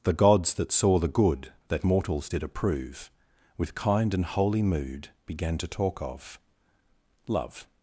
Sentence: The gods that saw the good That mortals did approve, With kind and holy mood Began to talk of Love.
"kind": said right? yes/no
yes